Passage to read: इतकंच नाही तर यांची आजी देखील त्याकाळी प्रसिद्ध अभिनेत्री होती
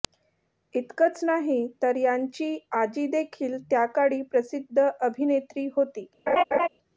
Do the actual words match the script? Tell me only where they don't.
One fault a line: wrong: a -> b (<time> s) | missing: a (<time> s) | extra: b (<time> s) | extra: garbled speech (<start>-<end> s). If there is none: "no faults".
no faults